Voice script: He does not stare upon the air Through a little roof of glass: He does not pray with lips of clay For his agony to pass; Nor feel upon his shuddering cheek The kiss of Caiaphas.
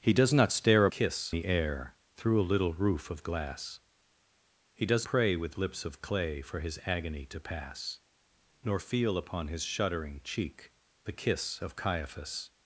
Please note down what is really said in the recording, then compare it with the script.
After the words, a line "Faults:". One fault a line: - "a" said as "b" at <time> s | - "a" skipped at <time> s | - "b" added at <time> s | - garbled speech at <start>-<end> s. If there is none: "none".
He does not stare kiss the air Through a little roof of glass: He does pray with lips of clay For his agony to pass; Nor feel upon his shuddering cheek The kiss of Caiaphas.
Faults:
- "upon" said as "kiss" at 0.9 s
- "not" skipped at 5.1 s